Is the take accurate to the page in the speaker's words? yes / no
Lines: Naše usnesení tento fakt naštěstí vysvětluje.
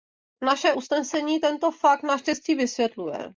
yes